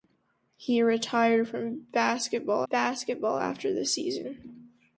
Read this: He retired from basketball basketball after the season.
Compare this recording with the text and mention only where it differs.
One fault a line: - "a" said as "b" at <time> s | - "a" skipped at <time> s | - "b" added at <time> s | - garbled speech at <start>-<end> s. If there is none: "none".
none